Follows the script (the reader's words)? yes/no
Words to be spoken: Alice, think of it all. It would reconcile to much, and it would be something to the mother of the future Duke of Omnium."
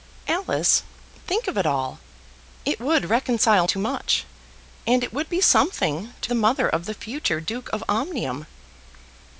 yes